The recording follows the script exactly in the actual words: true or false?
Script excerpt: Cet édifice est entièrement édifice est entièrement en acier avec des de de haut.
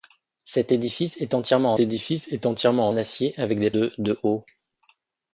true